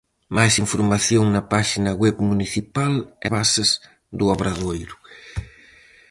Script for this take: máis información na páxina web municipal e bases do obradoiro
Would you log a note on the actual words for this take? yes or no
no